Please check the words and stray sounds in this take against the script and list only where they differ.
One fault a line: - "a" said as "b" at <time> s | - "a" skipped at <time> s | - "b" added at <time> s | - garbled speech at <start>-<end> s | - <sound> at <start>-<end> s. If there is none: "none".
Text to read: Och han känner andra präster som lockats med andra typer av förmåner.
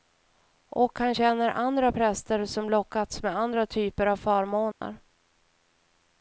- dropout at 4.7-4.8 s